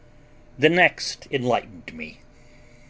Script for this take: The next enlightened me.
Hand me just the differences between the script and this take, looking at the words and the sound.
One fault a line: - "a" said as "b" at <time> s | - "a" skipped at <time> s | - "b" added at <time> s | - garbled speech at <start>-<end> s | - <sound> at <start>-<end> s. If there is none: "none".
none